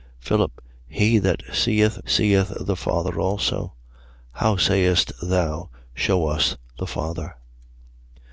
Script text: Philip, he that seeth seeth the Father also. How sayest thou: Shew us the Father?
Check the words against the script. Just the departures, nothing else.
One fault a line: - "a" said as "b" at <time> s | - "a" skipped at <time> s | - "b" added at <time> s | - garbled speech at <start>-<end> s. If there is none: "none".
none